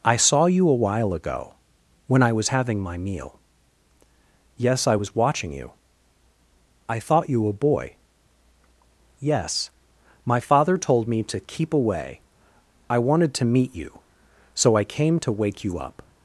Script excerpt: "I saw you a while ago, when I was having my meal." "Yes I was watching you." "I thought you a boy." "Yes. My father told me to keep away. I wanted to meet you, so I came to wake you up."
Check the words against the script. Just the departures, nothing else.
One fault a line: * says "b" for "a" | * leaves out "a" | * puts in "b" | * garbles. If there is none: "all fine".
all fine